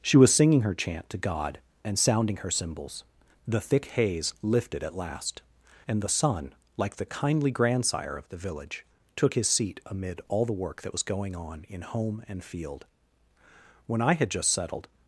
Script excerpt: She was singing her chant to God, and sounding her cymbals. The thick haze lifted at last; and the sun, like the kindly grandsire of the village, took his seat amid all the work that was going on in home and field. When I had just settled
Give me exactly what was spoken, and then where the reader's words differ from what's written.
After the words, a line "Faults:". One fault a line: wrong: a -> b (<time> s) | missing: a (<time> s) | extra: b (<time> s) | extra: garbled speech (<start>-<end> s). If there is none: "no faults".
She was singing her chant to God, and sounding her cymbals. The thick haze lifted at last; and the sun, like the kindly grandsire of the village, took his seat amid all the work that was going on in home and field. When I had just settled
Faults:
no faults